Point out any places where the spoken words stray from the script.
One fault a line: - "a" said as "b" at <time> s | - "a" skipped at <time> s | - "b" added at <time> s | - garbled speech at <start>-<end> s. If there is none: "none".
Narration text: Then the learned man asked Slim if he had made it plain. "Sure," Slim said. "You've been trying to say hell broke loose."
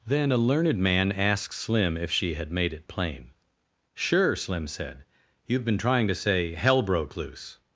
- "the" said as "a" at 0.3 s
- "he" said as "she" at 2.1 s